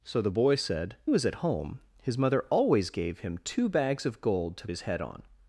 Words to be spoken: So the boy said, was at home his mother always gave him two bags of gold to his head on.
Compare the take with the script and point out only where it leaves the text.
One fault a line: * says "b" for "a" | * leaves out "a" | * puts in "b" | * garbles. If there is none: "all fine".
all fine